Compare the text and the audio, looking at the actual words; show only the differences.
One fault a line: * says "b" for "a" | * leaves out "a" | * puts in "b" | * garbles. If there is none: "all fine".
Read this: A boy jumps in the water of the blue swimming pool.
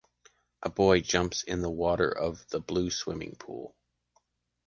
all fine